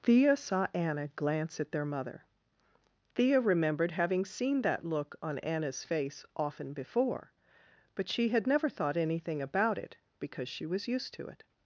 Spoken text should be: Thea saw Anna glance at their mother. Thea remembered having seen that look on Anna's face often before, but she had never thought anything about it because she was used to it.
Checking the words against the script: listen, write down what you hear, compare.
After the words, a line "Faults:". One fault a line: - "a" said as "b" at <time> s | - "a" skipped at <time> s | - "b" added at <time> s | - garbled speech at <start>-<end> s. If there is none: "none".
Thea saw Anna glance at their mother. Thea remembered having seen that look on Anna's face often before, but she had never thought anything about it because she was used to it.
Faults:
none